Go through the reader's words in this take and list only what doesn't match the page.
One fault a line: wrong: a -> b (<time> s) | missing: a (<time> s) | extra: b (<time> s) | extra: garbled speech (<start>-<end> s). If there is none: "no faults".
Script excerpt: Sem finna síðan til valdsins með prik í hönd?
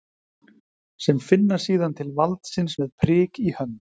no faults